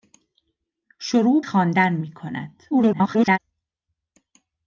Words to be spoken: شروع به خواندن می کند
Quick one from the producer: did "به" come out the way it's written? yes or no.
no